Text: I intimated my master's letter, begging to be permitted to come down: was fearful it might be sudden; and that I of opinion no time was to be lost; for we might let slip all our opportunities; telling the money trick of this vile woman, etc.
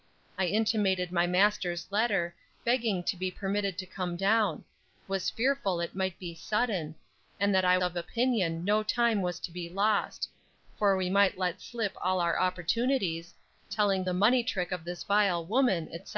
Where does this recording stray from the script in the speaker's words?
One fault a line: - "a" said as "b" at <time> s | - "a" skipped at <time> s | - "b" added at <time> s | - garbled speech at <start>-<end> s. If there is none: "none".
none